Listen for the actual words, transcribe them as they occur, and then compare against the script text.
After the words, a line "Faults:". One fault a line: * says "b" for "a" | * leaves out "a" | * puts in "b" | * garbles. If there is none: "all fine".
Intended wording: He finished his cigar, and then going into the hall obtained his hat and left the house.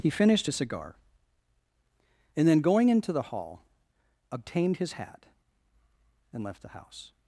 He finished his cigar, and then going into the hall obtained his hat and left the house.
Faults:
all fine